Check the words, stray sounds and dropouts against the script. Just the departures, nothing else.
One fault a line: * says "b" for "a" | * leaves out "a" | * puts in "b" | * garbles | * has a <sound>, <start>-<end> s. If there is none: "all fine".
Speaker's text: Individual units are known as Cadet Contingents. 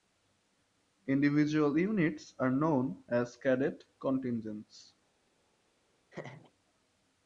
* has a laugh, 6.1-6.5 s